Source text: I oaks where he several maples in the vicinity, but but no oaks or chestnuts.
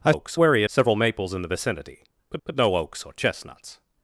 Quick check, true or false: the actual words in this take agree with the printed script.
true